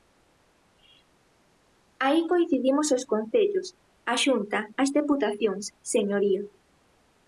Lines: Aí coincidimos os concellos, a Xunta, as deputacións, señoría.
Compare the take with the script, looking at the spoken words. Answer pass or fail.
pass